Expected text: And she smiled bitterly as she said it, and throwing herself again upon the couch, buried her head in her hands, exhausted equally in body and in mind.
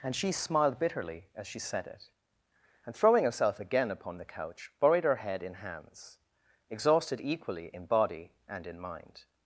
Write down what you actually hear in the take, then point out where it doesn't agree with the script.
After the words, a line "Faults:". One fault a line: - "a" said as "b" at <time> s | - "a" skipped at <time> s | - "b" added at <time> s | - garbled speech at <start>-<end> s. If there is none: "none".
And she smiled bitterly as she said it, and throwing herself again upon the couch, buried her head in hands, exhausted equally in body and in mind.
Faults:
- "her" skipped at 5.5 s